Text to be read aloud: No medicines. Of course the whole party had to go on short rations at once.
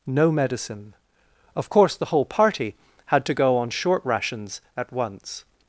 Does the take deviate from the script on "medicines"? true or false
true